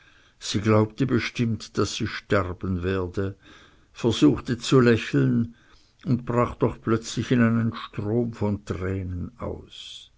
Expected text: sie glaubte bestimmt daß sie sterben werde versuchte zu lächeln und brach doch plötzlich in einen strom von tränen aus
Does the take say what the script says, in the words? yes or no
yes